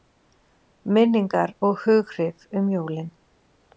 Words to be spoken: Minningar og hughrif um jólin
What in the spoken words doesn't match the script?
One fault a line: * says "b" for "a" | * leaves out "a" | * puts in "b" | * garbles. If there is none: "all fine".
all fine